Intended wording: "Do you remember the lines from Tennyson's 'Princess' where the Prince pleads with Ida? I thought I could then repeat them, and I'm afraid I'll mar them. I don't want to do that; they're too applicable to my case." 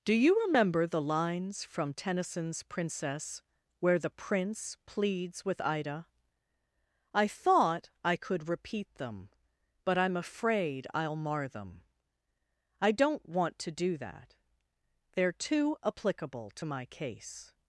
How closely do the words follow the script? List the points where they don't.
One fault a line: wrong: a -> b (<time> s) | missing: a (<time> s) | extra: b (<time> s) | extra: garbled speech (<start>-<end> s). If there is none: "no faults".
missing: then (8.5 s)
wrong: and -> but (9.8 s)